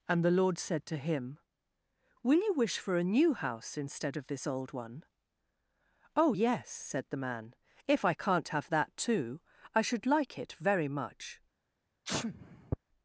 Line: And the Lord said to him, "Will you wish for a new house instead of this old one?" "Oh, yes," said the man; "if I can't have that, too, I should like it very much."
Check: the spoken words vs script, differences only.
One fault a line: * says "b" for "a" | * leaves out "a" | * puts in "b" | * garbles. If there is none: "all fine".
all fine